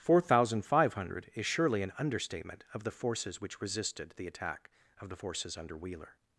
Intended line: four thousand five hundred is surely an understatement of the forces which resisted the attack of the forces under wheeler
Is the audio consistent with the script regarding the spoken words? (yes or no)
yes